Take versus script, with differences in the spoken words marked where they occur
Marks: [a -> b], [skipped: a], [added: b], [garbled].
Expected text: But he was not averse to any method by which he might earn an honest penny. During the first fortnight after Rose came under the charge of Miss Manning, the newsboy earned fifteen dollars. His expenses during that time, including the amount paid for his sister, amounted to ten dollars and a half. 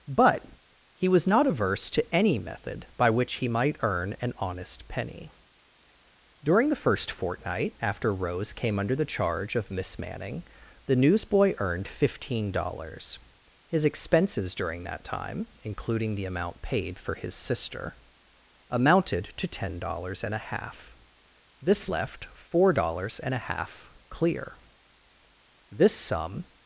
But he was not averse to any method by which he might earn an honest penny. During the first fortnight after Rose came under the charge of Miss Manning, the newsboy earned fifteen dollars. His expenses during that time, including the amount paid for his sister, amounted to ten dollars and a half. [added: This left four dollars and a half clear This sum]